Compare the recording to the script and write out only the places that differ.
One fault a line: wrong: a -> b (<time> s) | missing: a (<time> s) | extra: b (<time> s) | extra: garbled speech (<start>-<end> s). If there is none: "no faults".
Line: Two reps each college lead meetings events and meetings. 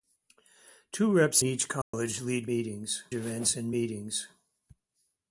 no faults